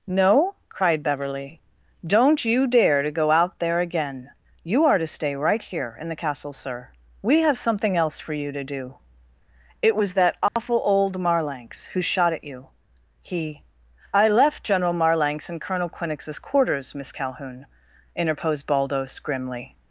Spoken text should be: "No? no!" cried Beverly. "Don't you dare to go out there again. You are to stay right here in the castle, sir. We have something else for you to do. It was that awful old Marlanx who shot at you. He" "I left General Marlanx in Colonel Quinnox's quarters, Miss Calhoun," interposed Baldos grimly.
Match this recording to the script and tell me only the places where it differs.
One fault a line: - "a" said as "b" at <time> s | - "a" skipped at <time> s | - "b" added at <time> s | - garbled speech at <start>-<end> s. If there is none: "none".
- "no" skipped at 0.6 s